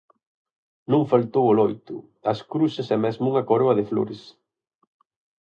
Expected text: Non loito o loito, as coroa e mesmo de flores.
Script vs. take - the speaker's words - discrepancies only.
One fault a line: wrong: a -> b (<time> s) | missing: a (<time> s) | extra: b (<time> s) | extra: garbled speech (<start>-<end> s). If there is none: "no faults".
wrong: loito -> faltou (1.1 s)
wrong: coroa -> cruces (2.5 s)
extra: unha coroa (3.3 s)